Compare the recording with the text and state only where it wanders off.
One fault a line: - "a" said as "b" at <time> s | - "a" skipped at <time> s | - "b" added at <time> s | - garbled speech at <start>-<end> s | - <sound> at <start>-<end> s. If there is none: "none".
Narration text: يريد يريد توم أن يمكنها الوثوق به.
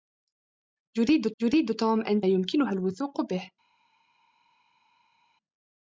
none